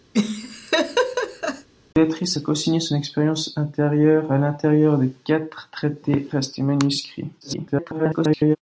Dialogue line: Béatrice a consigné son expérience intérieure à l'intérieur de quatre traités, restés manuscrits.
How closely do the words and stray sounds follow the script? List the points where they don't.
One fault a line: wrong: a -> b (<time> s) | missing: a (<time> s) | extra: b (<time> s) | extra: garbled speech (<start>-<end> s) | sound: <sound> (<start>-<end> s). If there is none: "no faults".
sound: laugh (0.1-1.7 s)
extra: garbled speech (7.4-8.6 s)